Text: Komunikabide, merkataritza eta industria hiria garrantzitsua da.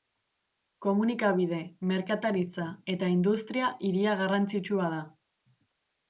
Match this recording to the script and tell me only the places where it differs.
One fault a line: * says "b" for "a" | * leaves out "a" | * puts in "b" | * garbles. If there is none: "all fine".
all fine